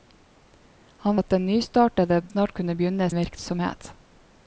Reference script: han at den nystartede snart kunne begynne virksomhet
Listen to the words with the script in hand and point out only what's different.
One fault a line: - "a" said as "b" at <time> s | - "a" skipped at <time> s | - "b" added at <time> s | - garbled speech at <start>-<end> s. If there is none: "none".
none